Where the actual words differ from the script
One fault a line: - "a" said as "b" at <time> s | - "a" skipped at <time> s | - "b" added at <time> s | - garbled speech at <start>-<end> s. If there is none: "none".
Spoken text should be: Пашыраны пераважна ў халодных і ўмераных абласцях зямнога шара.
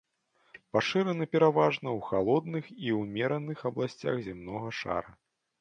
none